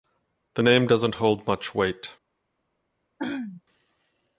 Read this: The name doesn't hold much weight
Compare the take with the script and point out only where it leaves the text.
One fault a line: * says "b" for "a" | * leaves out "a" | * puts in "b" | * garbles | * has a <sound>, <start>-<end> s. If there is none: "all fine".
* has a throat clearing, 3.2-3.6 s